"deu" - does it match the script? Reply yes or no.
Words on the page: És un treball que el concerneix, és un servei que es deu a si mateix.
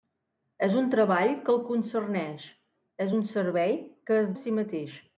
no